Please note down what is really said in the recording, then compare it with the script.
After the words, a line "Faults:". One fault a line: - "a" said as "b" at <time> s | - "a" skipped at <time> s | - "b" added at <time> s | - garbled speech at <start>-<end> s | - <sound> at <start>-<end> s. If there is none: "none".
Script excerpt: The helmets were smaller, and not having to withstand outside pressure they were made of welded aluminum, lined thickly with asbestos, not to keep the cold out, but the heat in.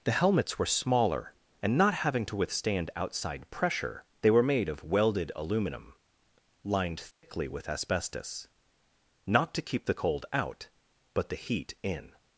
The helmets were smaller, and not having to withstand outside pressure they were made of welded aluminum, lined thickly with asbestos, not to keep the cold out, but the heat in.
Faults:
- dropout at 7.1-7.2 s